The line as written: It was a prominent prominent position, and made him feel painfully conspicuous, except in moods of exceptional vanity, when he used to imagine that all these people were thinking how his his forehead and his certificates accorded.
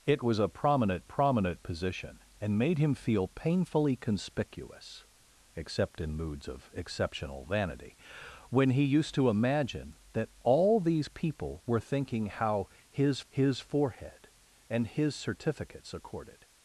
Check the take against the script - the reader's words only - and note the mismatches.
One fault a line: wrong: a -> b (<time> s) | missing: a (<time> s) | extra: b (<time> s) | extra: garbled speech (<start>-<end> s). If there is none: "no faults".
no faults